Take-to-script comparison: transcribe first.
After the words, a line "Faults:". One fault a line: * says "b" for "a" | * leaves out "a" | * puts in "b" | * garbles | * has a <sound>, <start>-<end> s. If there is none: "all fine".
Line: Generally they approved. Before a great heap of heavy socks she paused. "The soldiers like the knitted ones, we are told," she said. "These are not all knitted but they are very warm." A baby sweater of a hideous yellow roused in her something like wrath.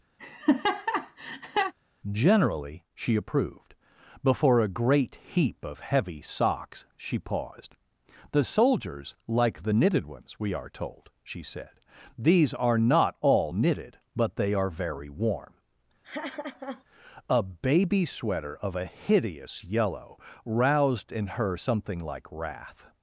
Generally she approved. Before a great heap of heavy socks she paused. "The soldiers like the knitted ones, we are told," she said. "These are not all knitted but they are very warm." A baby sweater of a hideous yellow roused in her something like wrath.
Faults:
* has a laugh, 0.2-1.7 s
* says "she" for "they"
* has a laugh, 16.0-16.8 s